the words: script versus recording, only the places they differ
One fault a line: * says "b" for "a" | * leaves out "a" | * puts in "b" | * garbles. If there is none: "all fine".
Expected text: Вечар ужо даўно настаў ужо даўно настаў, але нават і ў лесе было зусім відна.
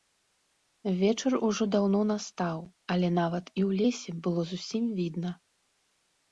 * leaves out "ужо даўно настаў"